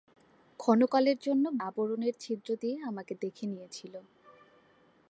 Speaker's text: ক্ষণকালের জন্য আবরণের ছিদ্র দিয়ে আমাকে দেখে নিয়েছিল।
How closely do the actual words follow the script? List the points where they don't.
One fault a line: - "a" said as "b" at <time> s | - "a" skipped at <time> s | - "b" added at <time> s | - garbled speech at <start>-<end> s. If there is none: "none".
none